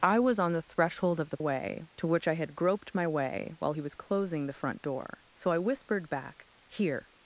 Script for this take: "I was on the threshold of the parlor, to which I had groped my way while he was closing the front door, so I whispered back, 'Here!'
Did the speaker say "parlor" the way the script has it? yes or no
no